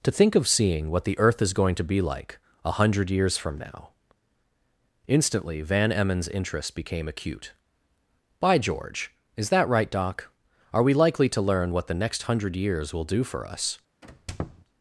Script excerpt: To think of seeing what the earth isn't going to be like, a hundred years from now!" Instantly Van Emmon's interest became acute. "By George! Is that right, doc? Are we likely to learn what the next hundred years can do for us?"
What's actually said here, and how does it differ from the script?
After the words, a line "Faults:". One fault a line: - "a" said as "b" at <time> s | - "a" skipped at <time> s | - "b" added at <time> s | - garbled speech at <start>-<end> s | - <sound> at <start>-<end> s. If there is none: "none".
To think of seeing what the earth is going to be like, a hundred years from now!" Instantly Van Emmon's interest became acute. "By George! Is that right, doc? Are we likely to learn what the next hundred years will do for us?"
Faults:
- "isn't" said as "is" at 1.4 s
- "can" said as "will" at 12.9 s
- squeak at 14.0-14.6 s